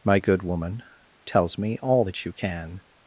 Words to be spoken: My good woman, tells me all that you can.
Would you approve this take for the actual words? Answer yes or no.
yes